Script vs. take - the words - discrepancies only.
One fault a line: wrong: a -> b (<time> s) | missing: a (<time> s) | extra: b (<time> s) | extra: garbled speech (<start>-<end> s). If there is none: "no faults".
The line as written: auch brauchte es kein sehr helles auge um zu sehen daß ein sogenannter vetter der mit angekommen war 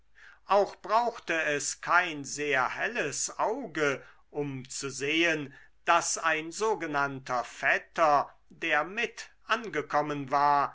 no faults